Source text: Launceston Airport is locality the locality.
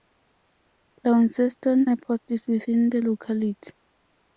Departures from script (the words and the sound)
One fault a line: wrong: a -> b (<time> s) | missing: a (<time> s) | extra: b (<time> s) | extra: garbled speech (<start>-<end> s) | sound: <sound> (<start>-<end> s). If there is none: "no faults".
wrong: locality -> within (2.5 s)